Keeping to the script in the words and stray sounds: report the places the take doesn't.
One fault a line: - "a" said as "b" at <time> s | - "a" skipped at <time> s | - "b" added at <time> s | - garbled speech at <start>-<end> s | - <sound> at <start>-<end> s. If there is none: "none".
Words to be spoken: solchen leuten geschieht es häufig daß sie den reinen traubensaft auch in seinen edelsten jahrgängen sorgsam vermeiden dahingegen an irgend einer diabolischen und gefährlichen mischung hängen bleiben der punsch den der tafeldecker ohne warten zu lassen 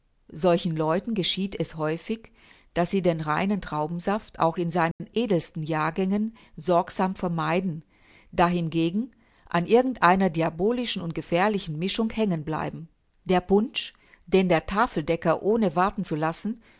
- dropout at 4.9-5.0 s